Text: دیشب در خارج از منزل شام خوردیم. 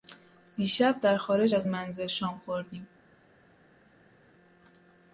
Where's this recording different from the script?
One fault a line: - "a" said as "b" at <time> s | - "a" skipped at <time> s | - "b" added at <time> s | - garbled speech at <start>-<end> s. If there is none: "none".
none